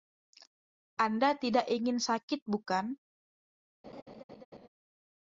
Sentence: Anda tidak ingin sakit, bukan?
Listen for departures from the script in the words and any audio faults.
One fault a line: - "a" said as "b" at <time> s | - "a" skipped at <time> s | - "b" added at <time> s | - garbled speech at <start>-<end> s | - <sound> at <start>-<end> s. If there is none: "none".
- laugh at 3.8-4.7 s